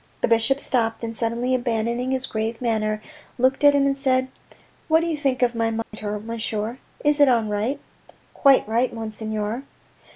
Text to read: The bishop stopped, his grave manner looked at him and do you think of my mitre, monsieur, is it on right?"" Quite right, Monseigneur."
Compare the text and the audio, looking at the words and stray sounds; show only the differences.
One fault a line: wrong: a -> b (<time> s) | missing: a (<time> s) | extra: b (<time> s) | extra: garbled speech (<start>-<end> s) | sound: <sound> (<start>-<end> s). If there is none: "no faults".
extra: and suddenly abandoning (1.0 s)
extra: said What (4.0 s)
sound: dropout (5.8-5.9 s)